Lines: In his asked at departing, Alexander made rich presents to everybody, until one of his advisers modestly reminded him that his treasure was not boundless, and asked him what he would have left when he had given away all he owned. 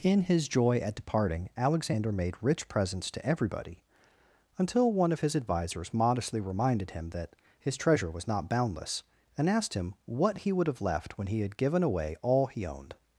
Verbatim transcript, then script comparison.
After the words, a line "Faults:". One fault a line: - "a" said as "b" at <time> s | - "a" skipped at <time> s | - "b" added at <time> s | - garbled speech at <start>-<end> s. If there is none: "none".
In his joy at departing, Alexander made rich presents to everybody, until one of his advisers modestly reminded him that his treasure was not boundless, and asked him what he would have left when he had given away all he owned.
Faults:
- "asked" said as "joy" at 0.5 s